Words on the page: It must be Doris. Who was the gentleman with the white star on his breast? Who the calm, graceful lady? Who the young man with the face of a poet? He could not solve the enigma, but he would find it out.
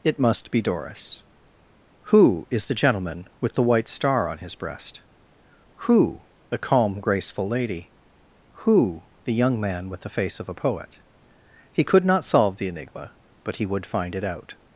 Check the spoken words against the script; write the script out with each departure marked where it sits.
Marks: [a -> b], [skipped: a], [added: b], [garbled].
It must be Doris. Who [was -> is] the gentleman with the white star on his breast? Who the calm, graceful lady? Who the young man with the face of a poet? He could not solve the enigma, but he would find it out.